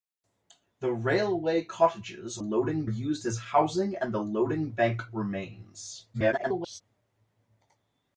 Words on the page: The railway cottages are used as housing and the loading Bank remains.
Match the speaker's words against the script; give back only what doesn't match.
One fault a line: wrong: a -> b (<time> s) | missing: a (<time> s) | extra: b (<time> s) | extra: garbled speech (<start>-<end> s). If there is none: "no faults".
wrong: are -> loading (2.4 s)
extra: garbled speech (6.1-6.8 s)